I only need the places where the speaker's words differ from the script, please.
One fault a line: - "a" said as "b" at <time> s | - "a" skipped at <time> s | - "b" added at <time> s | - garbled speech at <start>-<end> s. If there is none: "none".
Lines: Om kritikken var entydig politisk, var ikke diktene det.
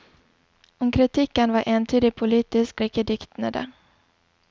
- "var" skipped at 2.8 s